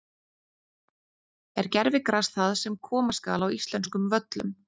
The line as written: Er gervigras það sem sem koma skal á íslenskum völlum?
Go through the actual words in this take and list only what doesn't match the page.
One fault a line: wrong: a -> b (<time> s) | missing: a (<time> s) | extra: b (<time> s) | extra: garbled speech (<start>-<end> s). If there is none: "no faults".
missing: sem (2.8 s)